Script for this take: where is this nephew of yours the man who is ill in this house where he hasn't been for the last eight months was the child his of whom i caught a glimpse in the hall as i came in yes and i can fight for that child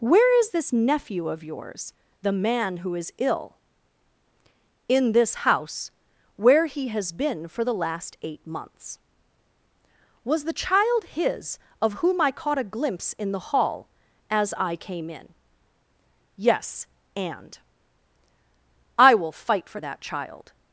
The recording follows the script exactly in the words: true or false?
false